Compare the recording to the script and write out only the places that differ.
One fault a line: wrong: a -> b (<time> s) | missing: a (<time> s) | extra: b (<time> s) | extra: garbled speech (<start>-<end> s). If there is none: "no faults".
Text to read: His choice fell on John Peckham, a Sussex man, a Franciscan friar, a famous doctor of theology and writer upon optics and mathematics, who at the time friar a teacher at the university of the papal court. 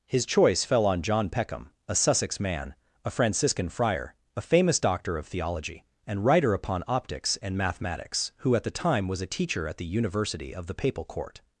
wrong: friar -> was (9.1 s)